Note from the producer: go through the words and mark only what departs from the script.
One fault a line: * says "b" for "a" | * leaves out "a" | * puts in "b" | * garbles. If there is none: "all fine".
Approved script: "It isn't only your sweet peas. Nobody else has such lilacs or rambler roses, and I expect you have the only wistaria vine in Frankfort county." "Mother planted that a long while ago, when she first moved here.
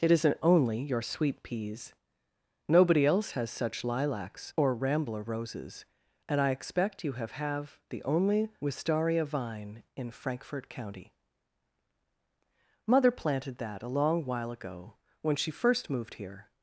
* puts in "have"